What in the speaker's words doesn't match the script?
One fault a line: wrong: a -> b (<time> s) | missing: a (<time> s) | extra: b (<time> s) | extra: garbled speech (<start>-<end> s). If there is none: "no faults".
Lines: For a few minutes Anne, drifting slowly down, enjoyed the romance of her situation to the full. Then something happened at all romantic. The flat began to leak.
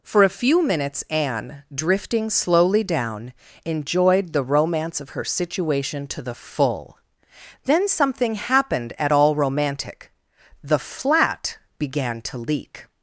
no faults